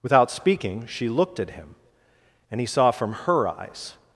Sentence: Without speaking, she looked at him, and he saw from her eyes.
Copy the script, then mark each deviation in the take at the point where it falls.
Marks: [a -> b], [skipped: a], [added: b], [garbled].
Without speaking, she looked at him, and he saw from her eyes.